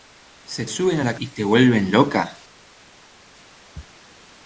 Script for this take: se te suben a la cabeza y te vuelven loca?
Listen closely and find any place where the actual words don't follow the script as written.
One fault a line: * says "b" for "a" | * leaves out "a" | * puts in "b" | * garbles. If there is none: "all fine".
* leaves out "te"
* leaves out "cabeza"